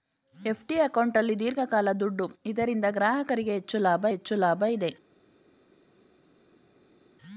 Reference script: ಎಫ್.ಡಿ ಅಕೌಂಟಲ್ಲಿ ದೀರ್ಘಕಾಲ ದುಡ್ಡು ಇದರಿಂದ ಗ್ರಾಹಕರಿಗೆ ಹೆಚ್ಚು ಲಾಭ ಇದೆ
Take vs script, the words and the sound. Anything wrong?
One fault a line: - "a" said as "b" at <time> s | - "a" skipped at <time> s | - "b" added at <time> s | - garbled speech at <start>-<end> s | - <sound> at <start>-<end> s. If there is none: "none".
- "ಹೆಚ್ಚು ಲಾಭ" added at 4.1 s